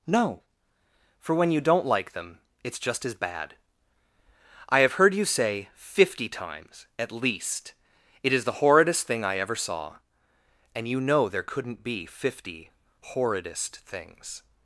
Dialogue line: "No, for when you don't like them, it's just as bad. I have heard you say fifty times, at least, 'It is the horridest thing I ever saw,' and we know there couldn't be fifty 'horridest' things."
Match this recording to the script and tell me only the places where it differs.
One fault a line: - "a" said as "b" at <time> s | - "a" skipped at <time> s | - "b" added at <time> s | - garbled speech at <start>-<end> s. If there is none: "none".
- "we" said as "you" at 10.9 s